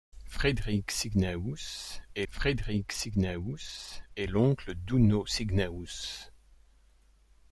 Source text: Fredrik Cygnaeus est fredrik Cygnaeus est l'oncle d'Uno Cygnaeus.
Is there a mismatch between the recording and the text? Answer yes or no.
no